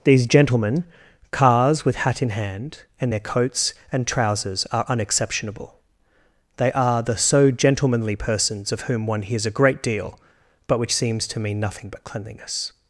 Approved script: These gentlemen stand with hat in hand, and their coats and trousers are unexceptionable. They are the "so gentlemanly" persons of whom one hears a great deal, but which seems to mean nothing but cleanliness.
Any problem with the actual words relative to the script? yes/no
yes